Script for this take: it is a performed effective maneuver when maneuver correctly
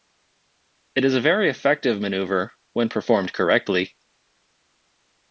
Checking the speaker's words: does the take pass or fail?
fail